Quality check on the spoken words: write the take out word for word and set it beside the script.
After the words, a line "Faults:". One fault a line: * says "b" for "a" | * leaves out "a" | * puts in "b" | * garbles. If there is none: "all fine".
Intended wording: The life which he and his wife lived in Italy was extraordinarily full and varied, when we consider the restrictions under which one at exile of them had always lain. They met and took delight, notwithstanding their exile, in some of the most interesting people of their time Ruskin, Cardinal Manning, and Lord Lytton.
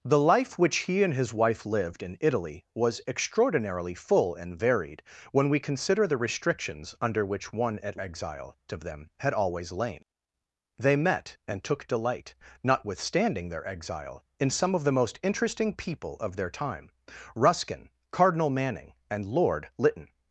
The life which he and his wife lived in Italy was extraordinarily full and varied, when we consider the restrictions under which one at exile of them had always lain. They met and took delight, notwithstanding their exile, in some of the most interesting people of their time Ruskin, Cardinal Manning, and Lord Lytton.
Faults:
all fine